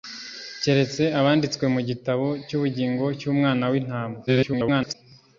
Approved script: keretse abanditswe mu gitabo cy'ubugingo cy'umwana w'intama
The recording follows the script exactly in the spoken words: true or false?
false